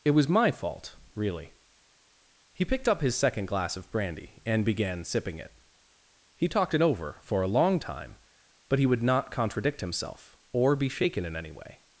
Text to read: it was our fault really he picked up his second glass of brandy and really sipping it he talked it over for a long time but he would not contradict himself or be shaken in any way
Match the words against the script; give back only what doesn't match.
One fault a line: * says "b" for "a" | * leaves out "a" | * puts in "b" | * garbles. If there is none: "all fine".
* says "my" for "our"
* says "began" for "really"